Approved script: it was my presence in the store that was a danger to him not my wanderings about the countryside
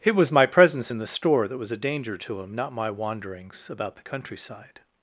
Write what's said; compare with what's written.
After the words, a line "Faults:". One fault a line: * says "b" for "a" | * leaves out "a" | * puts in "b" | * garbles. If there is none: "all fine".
it was my presence in the store that was a danger to him not my wanderings about the countryside
Faults:
all fine